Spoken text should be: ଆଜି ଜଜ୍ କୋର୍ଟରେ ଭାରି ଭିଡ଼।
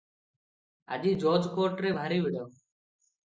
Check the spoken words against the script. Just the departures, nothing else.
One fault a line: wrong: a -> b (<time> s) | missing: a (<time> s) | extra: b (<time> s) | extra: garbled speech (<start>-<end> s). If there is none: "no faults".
no faults